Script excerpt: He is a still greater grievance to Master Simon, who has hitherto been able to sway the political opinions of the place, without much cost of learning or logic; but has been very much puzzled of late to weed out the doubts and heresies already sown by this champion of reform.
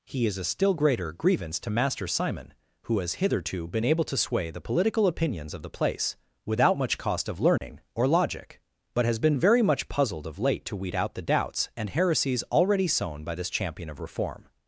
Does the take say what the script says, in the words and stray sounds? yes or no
no